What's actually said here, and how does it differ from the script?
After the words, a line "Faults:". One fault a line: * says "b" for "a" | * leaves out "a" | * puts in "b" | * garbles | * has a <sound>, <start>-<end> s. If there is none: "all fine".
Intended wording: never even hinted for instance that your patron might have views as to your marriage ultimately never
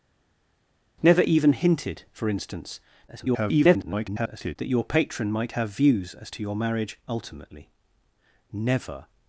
never even hinted for instance [garbled] that your patron might have views as to your marriage ultimately never
Faults:
* garbles